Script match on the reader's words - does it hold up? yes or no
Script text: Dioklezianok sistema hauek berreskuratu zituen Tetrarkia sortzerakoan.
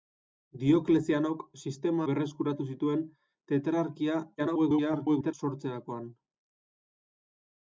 no